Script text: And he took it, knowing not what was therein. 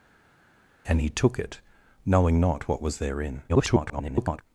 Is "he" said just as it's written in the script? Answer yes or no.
yes